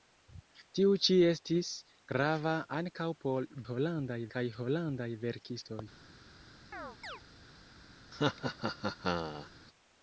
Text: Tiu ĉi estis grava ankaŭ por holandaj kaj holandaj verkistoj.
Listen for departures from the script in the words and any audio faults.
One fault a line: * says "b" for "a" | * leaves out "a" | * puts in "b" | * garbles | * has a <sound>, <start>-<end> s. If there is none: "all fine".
* has a chirp, 6.7-7.2 s
* has a laugh, 8.1-9.5 s